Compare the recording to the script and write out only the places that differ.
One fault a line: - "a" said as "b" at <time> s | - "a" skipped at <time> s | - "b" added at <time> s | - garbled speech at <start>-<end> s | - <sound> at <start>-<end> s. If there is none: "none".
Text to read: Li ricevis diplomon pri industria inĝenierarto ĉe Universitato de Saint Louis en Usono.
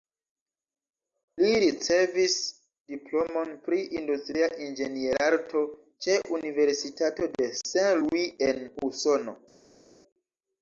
none